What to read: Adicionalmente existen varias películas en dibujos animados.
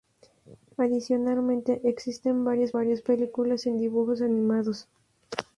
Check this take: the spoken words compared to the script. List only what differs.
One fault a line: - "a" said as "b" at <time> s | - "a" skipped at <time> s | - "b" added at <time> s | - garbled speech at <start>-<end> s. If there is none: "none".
- "varias" added at 2.7 s